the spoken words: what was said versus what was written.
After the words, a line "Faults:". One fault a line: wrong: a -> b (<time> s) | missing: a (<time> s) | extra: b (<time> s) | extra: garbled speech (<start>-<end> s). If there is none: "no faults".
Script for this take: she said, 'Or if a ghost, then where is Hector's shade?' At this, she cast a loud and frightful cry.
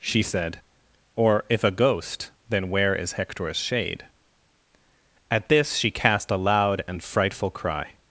she said, 'Or if a ghost, then where is Hector's shade?' At this, she cast a loud and frightful cry.
Faults:
no faults